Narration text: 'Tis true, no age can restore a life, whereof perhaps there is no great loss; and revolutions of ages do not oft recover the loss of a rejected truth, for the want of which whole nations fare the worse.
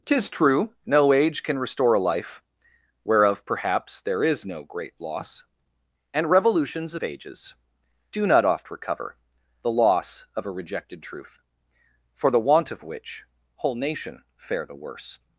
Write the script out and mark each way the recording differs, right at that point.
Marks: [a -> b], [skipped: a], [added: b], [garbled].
'Tis true, no age can restore a life, whereof perhaps there is no great loss; and revolutions of ages do not oft recover the loss of a rejected truth, for the want of which whole [nations -> nation] fare the worse.